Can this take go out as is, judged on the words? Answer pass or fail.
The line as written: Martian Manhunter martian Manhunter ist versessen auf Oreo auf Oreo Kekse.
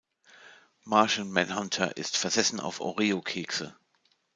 fail